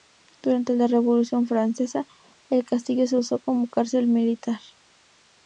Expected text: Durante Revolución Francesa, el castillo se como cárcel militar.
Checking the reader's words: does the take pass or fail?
fail